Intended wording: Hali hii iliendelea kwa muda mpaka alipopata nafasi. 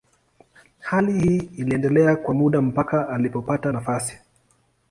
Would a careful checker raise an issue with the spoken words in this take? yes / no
no